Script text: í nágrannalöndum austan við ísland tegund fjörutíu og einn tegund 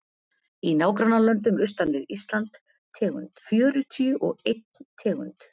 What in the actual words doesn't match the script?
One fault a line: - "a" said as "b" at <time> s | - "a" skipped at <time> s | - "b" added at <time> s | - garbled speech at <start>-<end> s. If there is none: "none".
none